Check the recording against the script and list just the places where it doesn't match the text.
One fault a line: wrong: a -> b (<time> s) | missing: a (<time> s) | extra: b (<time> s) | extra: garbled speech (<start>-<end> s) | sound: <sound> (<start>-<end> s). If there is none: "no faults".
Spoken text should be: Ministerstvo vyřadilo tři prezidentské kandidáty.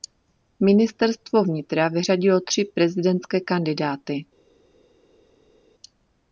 extra: vnitra (1.4 s)